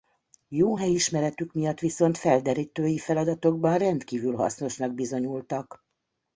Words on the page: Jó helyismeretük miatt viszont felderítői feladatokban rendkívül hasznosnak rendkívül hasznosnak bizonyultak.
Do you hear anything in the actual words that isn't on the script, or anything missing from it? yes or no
yes